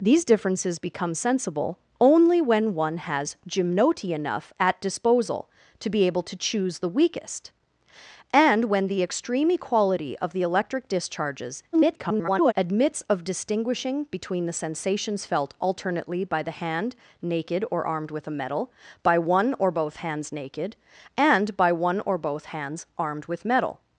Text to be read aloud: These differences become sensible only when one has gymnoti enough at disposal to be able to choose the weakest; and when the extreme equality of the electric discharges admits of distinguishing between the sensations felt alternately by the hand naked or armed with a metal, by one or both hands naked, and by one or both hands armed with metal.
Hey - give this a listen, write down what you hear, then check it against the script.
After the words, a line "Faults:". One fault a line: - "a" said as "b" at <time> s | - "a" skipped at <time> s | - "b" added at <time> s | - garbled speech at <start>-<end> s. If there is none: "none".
These differences become sensible only when one has gymnoti enough at disposal to be able to choose the weakest; and when the extreme equality of the electric discharges [garbled] admits of distinguishing between the sensations felt alternately by the hand naked or armed with a metal, by one or both hands naked, and by one or both hands armed with metal.
Faults:
- garbled speech at 11.7-12.5 s